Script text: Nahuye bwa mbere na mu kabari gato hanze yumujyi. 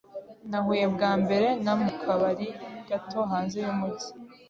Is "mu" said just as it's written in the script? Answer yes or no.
yes